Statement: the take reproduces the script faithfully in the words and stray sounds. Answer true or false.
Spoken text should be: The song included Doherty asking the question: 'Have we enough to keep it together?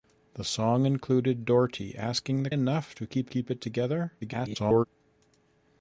false